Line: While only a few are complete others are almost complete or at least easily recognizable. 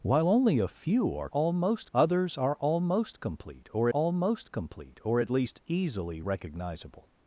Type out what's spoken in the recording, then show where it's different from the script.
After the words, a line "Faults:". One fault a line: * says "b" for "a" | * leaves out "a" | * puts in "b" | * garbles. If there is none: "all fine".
While only a few are almost others are almost complete or almost complete or at least easily recognizable.
Faults:
* says "almost" for "complete"
* puts in "almost complete or"